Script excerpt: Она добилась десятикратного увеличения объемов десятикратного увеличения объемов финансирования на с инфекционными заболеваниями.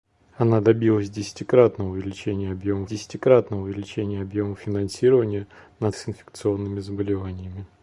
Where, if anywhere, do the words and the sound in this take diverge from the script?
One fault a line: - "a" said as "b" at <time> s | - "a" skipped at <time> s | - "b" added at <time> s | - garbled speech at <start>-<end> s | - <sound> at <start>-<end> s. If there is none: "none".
none